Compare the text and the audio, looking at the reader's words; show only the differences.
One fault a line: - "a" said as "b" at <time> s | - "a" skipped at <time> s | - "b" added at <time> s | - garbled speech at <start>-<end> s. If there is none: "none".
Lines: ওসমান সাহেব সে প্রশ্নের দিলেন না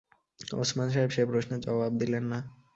- "জবাব" added at 1.6 s